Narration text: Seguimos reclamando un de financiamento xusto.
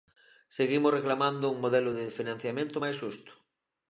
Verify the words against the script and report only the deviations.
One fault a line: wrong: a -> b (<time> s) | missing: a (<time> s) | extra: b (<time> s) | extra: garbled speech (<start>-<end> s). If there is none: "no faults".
extra: modelo (1.6 s)
extra: máis (2.8 s)